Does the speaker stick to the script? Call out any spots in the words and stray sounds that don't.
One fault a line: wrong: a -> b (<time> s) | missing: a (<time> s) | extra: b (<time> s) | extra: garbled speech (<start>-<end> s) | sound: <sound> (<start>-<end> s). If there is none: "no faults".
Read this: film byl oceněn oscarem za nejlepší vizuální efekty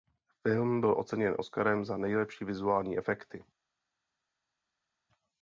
no faults